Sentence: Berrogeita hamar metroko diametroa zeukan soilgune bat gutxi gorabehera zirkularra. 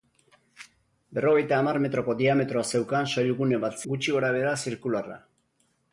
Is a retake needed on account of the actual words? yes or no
no